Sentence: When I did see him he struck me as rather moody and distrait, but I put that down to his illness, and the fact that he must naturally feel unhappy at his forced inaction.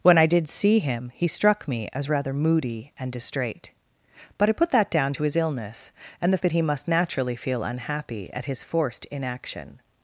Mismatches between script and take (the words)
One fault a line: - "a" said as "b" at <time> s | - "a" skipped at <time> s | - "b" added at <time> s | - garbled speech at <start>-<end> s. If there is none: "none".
- "fact" skipped at 6.4 s